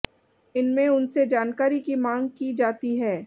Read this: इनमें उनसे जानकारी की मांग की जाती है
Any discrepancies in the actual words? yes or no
no